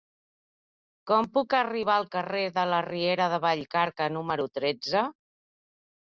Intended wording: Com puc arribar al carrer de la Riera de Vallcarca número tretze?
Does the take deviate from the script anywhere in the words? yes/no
no